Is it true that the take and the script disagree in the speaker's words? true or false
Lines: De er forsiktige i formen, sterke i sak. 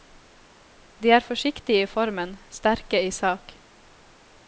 false